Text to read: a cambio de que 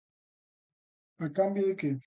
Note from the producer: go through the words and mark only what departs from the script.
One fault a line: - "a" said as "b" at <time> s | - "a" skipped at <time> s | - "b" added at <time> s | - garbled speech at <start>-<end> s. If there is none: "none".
none